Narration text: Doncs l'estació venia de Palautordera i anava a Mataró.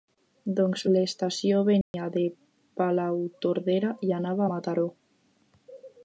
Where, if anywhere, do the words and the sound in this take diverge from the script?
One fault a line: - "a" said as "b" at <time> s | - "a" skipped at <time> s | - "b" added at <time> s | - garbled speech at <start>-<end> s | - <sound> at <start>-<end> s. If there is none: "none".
- dropout at 1.8-1.9 s